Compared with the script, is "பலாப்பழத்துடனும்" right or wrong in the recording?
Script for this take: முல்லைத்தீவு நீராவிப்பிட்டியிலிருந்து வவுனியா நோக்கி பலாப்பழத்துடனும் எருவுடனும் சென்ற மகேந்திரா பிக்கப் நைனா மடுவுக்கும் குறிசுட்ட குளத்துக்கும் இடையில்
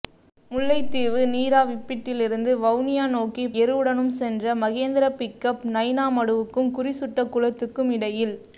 wrong